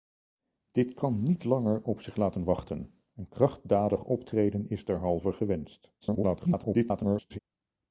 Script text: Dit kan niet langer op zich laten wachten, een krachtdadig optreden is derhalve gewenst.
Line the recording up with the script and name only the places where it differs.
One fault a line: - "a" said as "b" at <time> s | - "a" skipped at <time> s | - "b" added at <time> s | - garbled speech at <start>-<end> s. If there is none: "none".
- garbled speech at 6.0-7.4 s